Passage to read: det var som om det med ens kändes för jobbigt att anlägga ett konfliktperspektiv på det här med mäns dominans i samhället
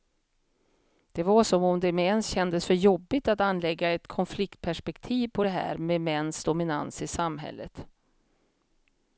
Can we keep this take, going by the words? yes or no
yes